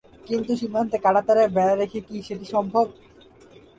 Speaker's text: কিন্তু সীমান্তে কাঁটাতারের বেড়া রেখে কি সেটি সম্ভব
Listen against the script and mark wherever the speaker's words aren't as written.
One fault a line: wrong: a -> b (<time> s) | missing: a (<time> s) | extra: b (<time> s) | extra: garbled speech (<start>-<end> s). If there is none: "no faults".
no faults